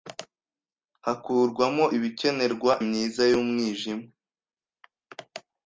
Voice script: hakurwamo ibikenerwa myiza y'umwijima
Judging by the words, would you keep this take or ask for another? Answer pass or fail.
pass